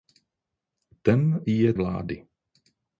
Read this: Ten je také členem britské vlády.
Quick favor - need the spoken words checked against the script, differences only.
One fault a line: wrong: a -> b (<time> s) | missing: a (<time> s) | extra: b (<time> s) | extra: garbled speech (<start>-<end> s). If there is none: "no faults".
missing: také členem britské (1.7 s)